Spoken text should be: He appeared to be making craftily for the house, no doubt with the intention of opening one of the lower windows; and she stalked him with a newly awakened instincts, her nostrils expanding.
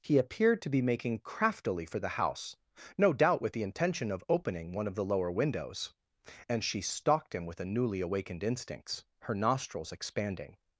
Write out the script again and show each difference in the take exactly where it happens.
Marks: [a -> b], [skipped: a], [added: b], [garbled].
He appeared to be making craftily for the house, no doubt with the intention of opening one of the lower windows; and she stalked him with a newly awakened instincts, her nostrils expanding.